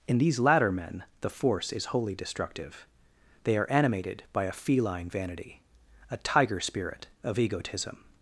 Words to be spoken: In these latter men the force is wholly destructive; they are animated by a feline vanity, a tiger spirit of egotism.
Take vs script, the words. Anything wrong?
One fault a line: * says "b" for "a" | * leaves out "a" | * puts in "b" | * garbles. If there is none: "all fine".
all fine